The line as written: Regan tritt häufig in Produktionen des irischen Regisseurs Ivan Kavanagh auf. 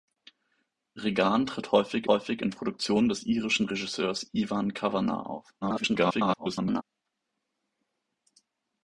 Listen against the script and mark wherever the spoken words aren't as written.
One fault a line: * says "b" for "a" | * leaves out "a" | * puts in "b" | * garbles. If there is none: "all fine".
* puts in "häufig"
* garbles